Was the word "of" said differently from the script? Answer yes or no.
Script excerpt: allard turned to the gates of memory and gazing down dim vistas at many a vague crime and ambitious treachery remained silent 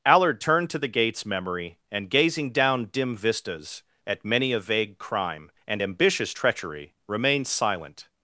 yes